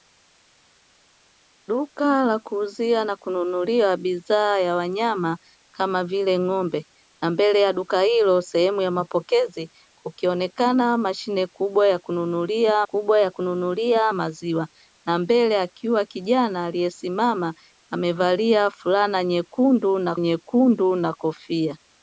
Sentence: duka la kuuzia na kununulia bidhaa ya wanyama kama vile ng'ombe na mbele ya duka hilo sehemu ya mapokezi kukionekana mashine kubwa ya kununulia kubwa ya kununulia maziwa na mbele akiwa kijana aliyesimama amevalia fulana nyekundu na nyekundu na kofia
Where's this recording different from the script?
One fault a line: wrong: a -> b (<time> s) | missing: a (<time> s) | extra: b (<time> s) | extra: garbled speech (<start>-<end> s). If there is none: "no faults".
no faults